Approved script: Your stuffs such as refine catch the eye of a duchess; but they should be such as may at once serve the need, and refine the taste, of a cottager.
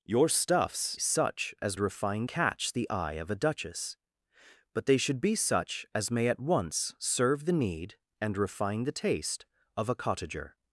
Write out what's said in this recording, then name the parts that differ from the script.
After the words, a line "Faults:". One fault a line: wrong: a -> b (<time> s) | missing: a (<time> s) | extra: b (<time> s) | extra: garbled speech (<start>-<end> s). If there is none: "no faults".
Your stuffs such as refine catch the eye of a duchess; but they should be such as may at once serve the need, and refine the taste, of a cottager.
Faults:
no faults